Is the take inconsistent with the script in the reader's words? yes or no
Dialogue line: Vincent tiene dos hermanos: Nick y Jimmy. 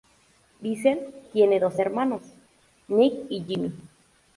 no